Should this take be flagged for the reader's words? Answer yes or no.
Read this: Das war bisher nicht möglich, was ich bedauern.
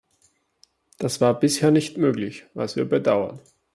yes